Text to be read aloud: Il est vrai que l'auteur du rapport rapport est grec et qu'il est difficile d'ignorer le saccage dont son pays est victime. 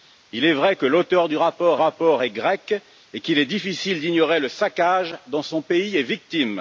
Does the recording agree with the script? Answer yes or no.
yes